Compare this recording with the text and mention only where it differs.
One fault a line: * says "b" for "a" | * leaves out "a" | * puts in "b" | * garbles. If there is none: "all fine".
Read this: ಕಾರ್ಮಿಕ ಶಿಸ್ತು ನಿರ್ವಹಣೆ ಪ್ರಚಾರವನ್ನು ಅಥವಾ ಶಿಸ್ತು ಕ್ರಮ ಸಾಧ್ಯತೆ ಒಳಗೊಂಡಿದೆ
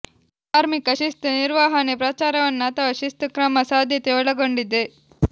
all fine